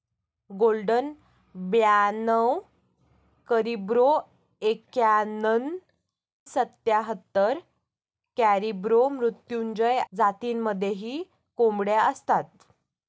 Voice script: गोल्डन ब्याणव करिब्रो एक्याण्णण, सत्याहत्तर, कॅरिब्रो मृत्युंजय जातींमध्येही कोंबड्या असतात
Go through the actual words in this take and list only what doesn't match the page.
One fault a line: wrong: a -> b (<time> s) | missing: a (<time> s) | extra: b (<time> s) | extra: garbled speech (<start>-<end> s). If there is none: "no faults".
no faults